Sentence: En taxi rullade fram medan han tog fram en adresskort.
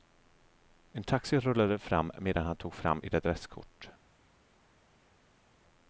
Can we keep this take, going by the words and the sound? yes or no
no